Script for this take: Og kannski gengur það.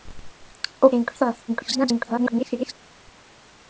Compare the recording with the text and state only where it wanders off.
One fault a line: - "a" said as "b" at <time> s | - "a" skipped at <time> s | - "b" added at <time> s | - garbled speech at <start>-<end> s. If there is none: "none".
- "kannski" skipped at 0.9 s
- garbled speech at 1.5-2.7 s